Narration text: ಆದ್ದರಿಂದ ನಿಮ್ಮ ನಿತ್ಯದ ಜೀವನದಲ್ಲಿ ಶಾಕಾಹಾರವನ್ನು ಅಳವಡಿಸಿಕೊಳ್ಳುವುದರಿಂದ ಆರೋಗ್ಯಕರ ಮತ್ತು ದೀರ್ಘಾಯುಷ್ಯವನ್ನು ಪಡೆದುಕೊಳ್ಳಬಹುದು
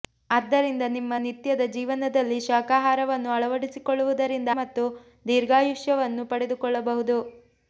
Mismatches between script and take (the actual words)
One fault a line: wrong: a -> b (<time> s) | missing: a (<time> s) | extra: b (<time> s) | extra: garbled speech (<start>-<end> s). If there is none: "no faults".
missing: ಆರೋಗ್ಯಕರ (4.5 s)